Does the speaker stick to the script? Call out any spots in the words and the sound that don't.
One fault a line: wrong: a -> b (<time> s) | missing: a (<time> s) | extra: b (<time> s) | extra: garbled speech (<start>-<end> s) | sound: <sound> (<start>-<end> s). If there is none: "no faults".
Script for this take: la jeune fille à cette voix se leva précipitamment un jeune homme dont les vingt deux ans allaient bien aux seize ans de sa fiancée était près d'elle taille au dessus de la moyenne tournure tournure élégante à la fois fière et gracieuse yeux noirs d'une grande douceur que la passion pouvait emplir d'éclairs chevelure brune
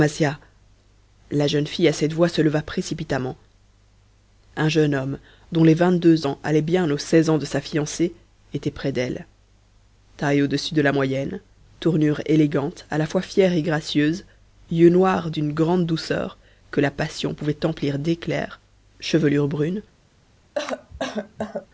missing: tournure (12.2 s)
sound: cough (20.6-21.7 s)